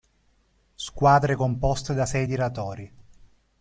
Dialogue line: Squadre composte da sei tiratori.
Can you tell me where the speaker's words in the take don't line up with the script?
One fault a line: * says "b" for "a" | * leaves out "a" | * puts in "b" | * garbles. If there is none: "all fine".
all fine